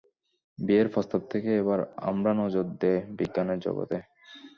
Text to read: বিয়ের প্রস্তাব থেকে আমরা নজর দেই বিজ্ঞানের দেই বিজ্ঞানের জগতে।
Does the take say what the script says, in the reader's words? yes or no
no